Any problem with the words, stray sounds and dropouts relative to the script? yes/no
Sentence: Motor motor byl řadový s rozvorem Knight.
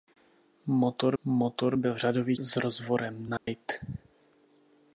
yes